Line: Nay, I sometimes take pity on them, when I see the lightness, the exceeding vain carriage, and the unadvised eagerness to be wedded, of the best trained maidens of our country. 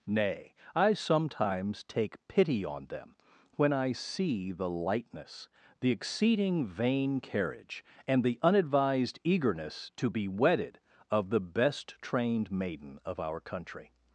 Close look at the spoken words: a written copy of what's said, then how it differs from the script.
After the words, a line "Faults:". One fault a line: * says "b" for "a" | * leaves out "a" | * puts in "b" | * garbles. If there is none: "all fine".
Nay, I sometimes take pity on them, when I see the lightness, the exceeding vain carriage, and the unadvised eagerness to be wedded, of the best trained maiden of our country.
Faults:
* says "maiden" for "maidens"